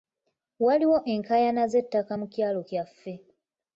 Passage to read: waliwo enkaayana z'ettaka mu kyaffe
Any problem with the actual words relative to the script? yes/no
yes